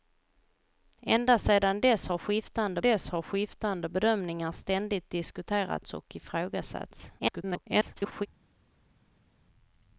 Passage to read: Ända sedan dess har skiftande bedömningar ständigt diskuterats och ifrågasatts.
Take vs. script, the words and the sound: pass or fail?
fail